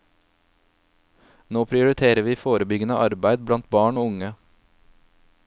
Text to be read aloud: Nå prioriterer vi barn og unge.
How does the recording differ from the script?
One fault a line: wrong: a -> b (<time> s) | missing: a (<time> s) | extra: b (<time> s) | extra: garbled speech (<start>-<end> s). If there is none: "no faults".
extra: forebyggende arbeid blant (2.4 s)